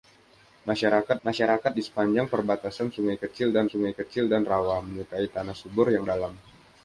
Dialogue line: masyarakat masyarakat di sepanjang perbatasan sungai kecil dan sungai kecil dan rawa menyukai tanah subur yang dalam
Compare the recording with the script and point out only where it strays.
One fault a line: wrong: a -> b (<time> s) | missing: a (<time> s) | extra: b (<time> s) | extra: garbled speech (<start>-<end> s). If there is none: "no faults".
no faults